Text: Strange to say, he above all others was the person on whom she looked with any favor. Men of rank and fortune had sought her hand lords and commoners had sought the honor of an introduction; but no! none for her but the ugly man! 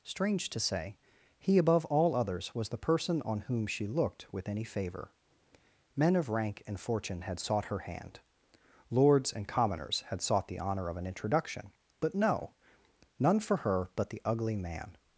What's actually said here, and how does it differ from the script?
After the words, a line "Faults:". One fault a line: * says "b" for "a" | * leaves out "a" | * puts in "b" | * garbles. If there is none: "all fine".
Strange to say, he above all others was the person on whom she looked with any favor. Men of rank and fortune had sought her hand lords and commoners had sought the honor of an introduction; but no! none for her but the ugly man!
Faults:
all fine